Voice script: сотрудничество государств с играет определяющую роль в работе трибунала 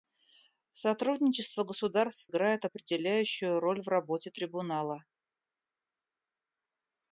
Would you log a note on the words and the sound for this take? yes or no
no